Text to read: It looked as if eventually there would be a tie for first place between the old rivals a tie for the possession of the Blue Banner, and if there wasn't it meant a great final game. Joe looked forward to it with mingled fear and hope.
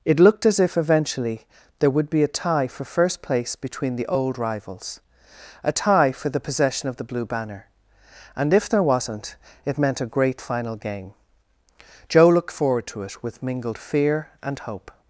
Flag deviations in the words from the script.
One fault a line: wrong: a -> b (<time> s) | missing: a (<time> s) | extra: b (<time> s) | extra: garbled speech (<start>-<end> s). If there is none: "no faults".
no faults